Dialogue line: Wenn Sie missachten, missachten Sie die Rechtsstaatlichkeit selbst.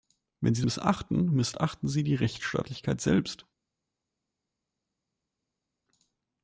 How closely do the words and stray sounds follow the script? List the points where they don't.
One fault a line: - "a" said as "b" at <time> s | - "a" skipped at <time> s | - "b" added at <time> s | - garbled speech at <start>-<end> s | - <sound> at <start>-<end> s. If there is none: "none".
none